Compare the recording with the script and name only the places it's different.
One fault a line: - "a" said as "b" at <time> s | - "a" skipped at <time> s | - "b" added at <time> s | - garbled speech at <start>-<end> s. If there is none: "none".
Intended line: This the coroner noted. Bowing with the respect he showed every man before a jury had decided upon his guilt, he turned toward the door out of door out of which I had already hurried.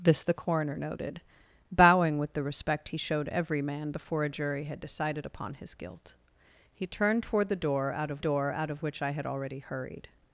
none